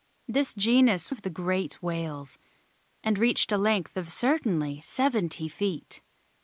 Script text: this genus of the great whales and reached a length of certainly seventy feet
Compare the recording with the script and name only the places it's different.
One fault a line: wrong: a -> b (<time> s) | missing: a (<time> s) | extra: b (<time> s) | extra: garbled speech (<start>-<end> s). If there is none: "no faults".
no faults